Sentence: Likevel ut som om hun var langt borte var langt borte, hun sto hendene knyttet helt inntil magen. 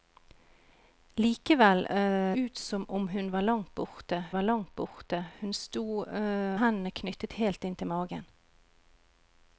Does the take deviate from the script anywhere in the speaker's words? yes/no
no